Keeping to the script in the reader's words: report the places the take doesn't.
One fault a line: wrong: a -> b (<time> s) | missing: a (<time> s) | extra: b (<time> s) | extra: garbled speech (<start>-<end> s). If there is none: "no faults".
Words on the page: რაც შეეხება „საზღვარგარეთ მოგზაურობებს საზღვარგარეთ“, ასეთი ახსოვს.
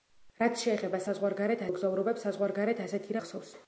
no faults